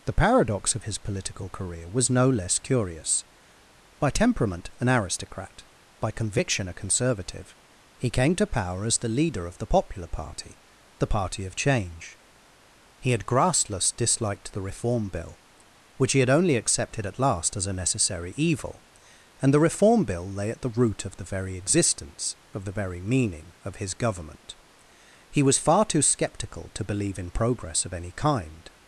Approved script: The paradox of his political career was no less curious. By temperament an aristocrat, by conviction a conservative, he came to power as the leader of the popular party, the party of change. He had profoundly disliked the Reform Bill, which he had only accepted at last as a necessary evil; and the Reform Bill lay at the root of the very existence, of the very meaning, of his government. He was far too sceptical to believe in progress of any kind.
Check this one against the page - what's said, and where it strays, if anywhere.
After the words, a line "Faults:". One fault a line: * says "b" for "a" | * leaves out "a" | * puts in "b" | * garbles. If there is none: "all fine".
The paradox of his political career was no less curious. By temperament an aristocrat, by conviction a conservative, he came to power as the leader of the popular party, the party of change. He had grassless disliked the Reform Bill, which he had only accepted at last as a necessary evil; and the Reform Bill lay at the root of the very existence, of the very meaning, of his government. He was far too sceptical to believe in progress of any kind.
Faults:
* says "grassless" for "profoundly"